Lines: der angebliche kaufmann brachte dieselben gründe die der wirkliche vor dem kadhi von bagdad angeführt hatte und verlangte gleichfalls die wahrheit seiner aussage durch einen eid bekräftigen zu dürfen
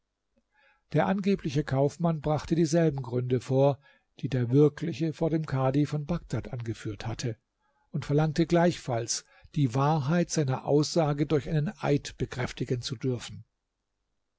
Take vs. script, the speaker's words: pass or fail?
fail